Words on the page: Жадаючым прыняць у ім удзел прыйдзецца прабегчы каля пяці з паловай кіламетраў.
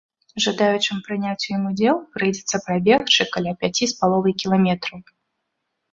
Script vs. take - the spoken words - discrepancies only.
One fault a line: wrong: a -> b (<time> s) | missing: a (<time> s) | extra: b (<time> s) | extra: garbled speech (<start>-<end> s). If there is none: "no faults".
no faults